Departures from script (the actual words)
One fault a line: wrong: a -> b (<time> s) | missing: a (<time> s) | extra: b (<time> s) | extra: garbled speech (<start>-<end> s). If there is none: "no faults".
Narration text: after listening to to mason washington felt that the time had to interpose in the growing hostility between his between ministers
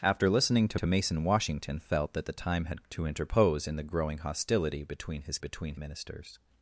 no faults